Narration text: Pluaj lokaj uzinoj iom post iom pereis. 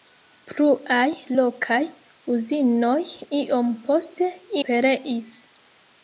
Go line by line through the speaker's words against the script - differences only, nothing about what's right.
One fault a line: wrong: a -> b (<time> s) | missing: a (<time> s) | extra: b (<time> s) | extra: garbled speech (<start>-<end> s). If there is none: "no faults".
missing: iom (4.3 s)